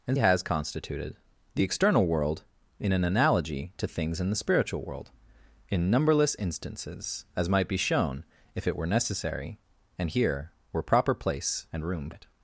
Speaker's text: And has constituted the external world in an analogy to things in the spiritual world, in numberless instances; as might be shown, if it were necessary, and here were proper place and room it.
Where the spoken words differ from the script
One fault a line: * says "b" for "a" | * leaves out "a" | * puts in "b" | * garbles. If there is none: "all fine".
all fine